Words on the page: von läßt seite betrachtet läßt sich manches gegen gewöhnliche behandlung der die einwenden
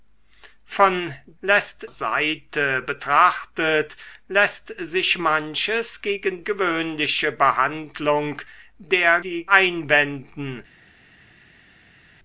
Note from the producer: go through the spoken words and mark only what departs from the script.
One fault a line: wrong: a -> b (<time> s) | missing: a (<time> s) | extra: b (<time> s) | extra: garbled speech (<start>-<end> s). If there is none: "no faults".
no faults